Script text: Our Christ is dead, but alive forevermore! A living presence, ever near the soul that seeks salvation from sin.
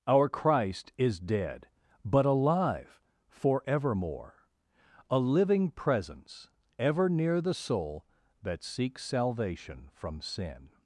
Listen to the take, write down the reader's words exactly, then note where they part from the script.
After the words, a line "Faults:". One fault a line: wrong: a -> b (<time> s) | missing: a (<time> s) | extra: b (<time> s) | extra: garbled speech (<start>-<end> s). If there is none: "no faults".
Our Christ is dead, but alive forevermore! A living presence, ever near the soul that seeks salvation from sin.
Faults:
no faults